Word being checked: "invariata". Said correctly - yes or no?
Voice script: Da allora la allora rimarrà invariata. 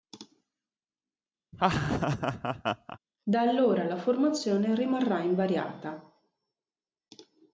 yes